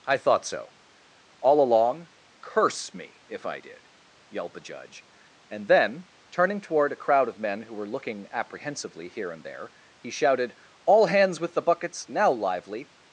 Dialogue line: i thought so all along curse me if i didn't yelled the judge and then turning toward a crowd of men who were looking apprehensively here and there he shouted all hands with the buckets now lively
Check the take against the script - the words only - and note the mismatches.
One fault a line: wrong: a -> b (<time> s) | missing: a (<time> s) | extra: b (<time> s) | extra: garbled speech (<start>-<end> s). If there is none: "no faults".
wrong: didn't -> did (3.6 s)